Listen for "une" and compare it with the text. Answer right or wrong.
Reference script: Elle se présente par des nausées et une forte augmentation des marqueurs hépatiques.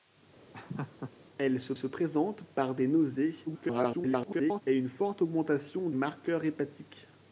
right